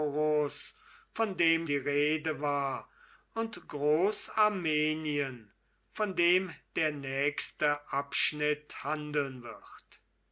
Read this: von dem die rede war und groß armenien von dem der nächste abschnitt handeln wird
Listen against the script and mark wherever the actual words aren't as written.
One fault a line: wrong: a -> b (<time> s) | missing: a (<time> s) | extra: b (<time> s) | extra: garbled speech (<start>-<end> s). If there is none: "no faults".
no faults